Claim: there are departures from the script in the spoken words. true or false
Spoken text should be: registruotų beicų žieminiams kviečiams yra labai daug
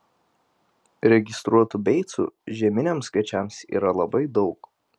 false